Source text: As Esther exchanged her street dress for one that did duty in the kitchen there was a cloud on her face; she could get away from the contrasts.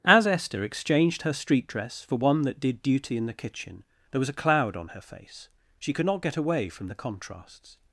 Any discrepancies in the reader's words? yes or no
yes